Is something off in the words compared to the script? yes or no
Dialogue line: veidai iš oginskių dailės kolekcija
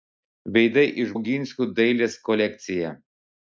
no